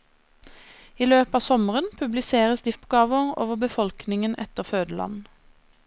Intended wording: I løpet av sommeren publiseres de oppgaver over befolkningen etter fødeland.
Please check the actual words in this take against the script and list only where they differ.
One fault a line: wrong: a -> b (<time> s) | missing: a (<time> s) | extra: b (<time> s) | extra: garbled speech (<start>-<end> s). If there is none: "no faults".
no faults